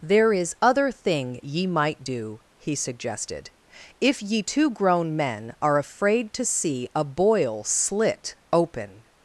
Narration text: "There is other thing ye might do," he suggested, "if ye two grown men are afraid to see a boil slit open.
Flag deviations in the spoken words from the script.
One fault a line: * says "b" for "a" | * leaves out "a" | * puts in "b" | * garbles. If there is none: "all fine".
all fine